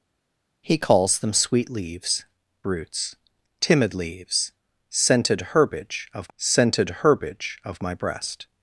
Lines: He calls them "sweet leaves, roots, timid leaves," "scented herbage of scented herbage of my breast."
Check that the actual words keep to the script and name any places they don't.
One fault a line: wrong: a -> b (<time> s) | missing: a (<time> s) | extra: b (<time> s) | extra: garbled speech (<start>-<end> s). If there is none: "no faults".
no faults